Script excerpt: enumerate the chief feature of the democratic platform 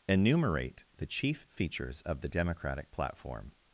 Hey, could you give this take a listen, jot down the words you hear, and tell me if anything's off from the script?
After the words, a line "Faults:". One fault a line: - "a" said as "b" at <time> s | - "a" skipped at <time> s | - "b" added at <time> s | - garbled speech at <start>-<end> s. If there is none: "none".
enumerate the chief features of the democratic platform
Faults:
- "feature" said as "features" at 1.5 s